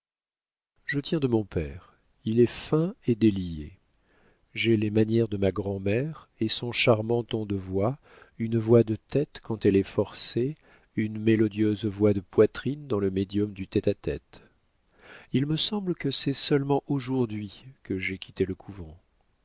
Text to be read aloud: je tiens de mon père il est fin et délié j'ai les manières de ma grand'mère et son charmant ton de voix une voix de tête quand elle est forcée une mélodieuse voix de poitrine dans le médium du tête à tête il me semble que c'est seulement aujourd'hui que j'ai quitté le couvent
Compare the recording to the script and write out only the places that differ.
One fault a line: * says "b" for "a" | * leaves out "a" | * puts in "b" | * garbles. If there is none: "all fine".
all fine